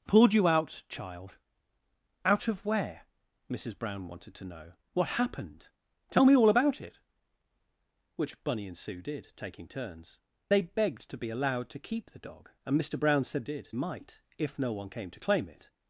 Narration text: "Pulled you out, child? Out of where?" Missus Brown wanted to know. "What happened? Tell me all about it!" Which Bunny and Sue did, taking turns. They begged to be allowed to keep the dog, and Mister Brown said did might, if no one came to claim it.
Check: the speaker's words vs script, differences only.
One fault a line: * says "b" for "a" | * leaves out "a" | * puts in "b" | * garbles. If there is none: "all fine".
all fine